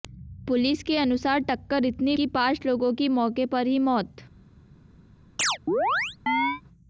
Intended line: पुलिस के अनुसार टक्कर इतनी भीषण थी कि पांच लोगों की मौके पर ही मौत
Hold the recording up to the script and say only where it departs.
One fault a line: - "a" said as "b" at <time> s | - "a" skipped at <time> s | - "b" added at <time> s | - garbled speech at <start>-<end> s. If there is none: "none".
- "भीषण थी" skipped at 2.2 s